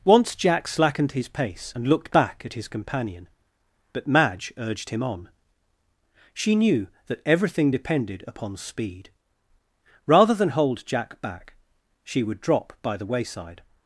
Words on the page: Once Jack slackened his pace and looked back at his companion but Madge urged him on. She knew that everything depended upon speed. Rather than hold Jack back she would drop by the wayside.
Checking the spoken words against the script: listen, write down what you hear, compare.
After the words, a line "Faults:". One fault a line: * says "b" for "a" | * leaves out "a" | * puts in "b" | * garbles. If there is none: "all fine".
Once Jack slackened his pace and looked back at his companion but Madge urged him on. She knew that everything depended upon speed. Rather than hold Jack back she would drop by the wayside.
Faults:
all fine